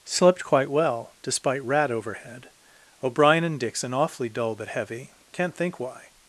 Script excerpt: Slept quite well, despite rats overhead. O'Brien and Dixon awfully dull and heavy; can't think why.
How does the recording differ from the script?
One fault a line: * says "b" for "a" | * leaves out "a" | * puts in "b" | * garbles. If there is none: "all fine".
* says "rat" for "rats"
* says "but" for "and"